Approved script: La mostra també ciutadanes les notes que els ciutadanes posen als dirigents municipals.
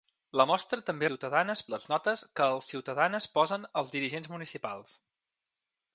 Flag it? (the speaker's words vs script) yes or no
no